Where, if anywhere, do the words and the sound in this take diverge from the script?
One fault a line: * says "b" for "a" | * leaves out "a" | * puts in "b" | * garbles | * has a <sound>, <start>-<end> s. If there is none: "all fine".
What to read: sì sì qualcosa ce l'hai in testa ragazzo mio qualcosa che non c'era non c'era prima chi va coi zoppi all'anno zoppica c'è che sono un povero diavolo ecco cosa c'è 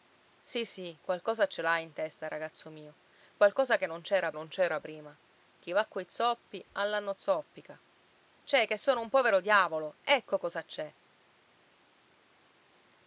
all fine